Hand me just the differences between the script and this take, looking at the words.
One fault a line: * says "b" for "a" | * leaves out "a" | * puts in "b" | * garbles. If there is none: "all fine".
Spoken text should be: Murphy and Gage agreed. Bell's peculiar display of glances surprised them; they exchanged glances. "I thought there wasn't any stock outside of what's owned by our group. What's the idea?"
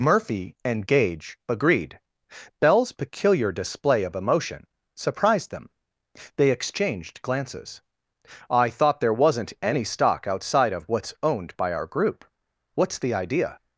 * says "emotion" for "glances"